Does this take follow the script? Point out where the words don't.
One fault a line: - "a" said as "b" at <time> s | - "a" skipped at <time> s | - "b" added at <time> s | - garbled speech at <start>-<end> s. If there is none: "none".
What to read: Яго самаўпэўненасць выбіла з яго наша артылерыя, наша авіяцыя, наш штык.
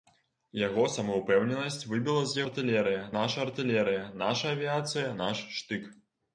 - "яго" said as "артылерыя" at 2.5 s